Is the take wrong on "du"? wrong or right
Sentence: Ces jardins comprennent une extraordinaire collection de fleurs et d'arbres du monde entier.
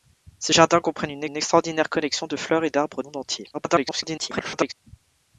wrong